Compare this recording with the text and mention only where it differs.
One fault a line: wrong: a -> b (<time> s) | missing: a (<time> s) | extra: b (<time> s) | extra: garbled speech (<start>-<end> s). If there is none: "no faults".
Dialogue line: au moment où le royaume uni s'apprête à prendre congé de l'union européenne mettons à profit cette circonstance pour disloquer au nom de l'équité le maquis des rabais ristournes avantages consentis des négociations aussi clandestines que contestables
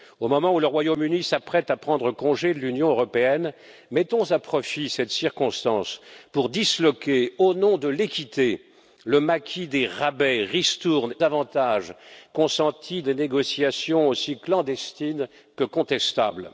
no faults